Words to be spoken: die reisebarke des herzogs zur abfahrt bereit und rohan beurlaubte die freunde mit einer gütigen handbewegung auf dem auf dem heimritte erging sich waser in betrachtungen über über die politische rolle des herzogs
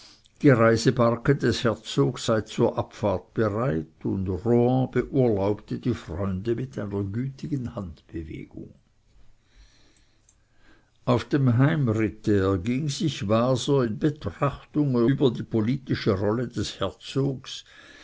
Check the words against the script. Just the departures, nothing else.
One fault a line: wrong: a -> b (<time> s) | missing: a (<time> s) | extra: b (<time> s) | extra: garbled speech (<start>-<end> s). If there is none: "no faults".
extra: sei (2.3 s)
missing: auf dem (11.6 s)
missing: über (15.3 s)